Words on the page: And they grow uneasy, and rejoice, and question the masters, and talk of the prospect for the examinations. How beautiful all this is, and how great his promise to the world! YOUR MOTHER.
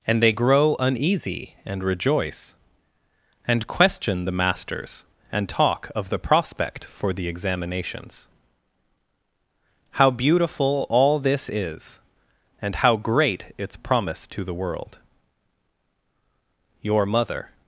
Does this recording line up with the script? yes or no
no